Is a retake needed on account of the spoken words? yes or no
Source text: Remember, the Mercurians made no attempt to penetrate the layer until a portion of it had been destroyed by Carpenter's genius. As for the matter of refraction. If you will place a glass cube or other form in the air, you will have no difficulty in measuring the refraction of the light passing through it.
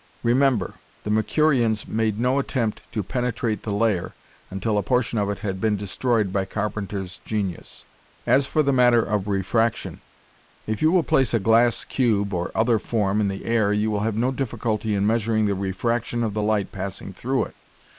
no